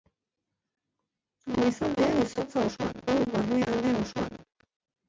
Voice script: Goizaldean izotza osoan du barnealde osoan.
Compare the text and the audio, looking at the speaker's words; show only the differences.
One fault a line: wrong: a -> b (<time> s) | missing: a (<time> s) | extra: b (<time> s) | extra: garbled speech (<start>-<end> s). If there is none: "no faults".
no faults